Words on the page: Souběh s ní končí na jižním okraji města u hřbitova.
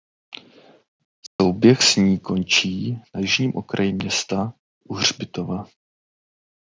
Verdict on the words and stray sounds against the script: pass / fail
fail